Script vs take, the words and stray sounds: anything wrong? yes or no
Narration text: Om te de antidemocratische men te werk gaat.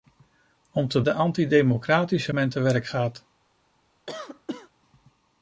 yes